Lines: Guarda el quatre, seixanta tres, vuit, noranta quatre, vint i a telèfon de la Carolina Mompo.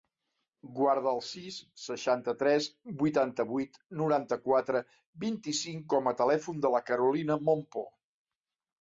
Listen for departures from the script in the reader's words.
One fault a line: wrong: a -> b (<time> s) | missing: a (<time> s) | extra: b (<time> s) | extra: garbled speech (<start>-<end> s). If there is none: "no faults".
wrong: quatre -> sis (1.3 s)
extra: vuitanta (3.0 s)
extra: cinc com (5.6 s)